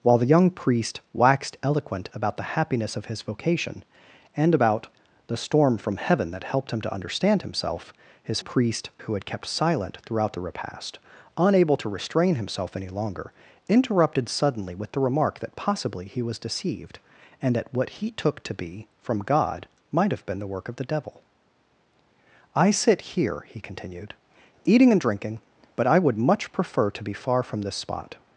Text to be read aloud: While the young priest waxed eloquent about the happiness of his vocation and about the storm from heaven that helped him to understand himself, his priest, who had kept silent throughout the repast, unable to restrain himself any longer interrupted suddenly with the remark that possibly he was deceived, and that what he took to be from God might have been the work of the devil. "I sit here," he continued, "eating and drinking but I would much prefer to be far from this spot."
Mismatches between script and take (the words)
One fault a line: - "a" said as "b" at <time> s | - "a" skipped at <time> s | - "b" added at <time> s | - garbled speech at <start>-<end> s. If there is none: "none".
none